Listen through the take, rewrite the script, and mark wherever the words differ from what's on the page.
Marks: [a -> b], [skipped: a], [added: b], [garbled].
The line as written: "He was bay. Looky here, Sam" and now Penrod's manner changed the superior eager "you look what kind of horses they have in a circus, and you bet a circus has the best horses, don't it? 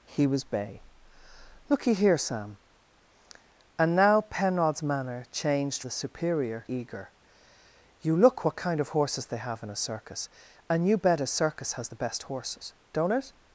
"He was bay. Looky here, Sam" and now Penrod's manner changed the superior eager "you look what kind of horses they have in a circus, and you bet a circus has the best horses, don't it?